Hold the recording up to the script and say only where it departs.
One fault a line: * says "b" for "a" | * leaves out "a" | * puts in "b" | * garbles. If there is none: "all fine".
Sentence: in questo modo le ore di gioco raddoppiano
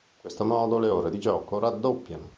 all fine